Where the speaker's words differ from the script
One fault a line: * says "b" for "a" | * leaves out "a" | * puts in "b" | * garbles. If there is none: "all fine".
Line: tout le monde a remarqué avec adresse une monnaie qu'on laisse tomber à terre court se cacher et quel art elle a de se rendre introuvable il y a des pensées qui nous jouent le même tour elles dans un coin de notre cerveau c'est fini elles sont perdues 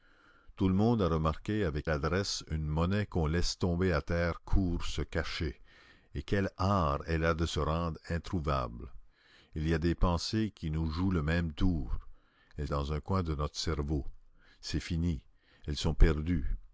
all fine